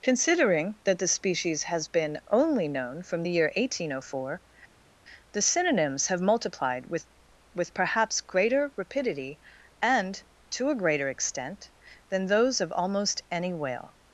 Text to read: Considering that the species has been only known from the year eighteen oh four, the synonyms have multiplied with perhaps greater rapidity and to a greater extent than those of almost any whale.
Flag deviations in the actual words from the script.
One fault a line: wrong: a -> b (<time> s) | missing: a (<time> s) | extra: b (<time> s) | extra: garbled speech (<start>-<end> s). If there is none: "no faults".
extra: with (7.5 s)